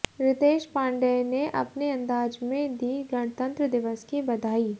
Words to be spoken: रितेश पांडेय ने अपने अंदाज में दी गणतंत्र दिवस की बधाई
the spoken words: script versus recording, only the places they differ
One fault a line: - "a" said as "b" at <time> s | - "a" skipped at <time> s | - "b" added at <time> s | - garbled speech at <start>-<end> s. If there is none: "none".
none